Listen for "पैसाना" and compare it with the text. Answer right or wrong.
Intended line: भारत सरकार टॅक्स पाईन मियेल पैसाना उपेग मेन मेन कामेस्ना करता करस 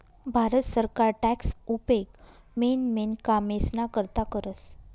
wrong